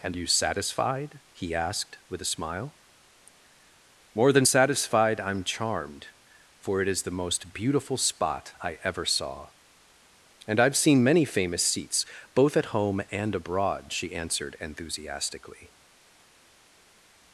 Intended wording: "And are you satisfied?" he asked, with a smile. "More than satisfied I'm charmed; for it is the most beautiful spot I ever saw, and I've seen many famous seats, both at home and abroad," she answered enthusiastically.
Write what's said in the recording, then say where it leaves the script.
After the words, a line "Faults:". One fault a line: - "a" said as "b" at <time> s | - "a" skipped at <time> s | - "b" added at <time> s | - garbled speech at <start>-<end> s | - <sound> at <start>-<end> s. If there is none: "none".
"And you satisfied?" he asked, with a smile. "More than satisfied I'm charmed; for it is the most beautiful spot I ever saw, and I've seen many famous seats, both at home and abroad," she answered enthusiastically.
Faults:
- "are" skipped at 0.2 s